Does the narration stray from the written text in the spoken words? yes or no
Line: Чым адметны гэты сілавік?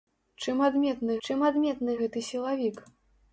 yes